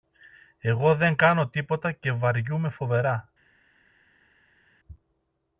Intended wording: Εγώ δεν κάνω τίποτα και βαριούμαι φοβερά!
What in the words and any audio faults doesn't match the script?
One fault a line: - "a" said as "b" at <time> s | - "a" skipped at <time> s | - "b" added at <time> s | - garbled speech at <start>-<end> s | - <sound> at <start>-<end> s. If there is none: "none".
none